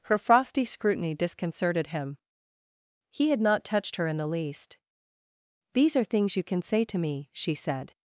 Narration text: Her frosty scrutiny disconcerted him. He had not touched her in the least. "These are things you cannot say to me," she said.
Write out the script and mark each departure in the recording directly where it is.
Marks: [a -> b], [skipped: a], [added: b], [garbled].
Her frosty scrutiny disconcerted him. He had not touched her in the least. "These are things you [cannot -> can] say to me," she said.